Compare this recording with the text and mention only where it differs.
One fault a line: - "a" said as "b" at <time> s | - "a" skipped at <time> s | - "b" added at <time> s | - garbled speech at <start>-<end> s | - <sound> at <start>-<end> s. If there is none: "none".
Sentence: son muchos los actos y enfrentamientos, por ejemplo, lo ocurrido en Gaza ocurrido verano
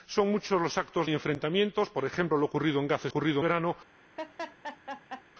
- laugh at 4.2-5.2 s